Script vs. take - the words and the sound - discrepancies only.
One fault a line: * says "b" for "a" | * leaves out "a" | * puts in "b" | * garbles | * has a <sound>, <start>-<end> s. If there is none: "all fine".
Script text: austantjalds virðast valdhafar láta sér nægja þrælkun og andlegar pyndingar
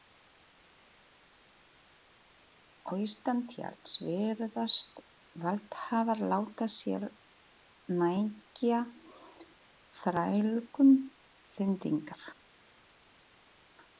* leaves out "og andlegar"